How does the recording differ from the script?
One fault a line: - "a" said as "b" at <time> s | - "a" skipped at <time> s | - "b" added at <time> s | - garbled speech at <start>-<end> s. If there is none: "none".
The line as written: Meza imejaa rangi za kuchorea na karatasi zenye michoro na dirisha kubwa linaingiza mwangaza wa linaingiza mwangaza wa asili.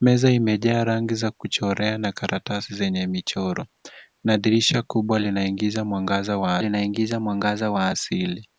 none